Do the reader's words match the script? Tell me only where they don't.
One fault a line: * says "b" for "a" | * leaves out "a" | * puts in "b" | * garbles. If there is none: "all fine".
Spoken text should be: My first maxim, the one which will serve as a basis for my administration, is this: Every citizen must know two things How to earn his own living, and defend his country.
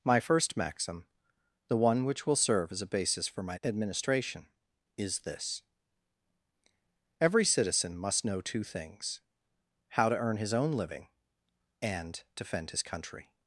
all fine